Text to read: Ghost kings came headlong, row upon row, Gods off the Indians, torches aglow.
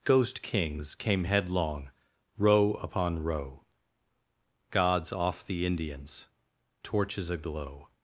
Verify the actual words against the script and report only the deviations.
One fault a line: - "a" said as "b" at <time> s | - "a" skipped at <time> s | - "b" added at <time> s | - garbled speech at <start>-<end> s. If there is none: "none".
none